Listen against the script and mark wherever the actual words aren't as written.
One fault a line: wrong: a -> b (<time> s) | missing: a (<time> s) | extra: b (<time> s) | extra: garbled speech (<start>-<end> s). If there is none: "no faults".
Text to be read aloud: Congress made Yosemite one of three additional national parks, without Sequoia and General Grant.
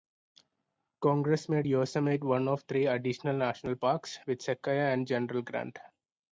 wrong: without -> with (4.3 s)